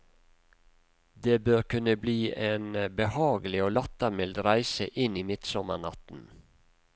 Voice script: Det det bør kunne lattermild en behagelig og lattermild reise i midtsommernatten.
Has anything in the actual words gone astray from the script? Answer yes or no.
yes